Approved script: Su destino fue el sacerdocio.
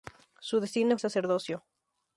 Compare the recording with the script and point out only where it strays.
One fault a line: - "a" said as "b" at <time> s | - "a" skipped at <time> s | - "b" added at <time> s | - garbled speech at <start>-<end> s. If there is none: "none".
- "fue" skipped at 1.0 s